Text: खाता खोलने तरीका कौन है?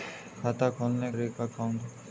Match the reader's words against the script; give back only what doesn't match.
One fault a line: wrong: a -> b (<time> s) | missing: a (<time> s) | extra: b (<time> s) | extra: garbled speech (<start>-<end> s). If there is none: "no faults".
no faults